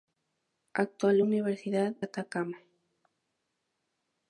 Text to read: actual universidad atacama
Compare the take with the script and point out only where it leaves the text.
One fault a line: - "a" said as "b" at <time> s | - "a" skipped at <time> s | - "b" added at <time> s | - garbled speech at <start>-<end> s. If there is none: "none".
none